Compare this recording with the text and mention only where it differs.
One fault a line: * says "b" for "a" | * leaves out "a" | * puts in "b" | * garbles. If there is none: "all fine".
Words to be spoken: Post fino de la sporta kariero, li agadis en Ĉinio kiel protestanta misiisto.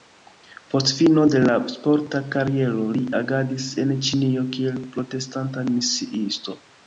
all fine